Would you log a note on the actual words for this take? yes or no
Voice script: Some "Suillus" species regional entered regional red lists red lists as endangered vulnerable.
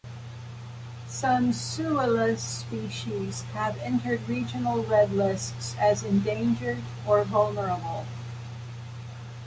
yes